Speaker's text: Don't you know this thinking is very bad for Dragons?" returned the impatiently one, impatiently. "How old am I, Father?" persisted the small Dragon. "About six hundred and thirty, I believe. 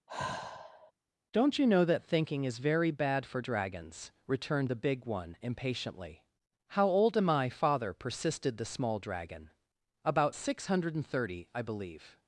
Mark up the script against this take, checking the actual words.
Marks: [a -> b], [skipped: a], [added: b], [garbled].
Don't you know [this -> that] thinking is very bad for Dragons?" returned the [impatiently -> big] one, impatiently. "How old am I, Father?" persisted the small Dragon. "About six hundred and thirty, I believe.